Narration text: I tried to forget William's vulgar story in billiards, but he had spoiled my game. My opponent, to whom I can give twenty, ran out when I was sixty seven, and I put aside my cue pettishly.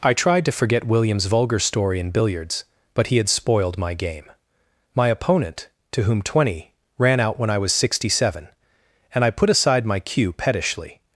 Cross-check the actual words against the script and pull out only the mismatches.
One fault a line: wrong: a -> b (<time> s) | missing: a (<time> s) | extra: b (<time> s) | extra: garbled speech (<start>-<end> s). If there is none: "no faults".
missing: I can give (6.2 s)